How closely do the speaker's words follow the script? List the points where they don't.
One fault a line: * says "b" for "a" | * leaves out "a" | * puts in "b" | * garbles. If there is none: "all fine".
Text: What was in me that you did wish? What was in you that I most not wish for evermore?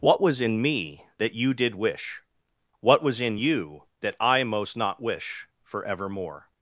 all fine